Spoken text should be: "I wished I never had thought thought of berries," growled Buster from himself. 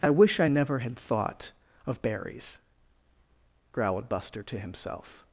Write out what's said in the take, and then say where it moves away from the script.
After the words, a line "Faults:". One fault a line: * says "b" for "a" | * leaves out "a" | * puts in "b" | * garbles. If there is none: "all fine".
"I wish I never had thought of berries," growled Buster to himself.
Faults:
* says "wish" for "wished"
* leaves out "thought"
* says "to" for "from"